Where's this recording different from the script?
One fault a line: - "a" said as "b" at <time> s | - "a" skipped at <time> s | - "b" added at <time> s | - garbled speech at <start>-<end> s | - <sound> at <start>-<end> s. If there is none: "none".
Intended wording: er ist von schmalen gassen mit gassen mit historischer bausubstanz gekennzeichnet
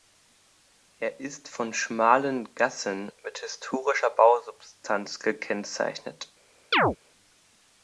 - "gassen mit" skipped at 3.4 s
- chirp at 6.7-7.0 s